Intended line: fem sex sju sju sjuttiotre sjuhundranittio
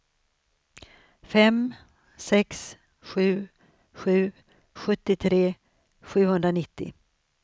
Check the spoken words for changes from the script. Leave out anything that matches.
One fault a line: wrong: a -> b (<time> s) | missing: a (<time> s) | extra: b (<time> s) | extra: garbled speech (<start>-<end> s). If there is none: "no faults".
no faults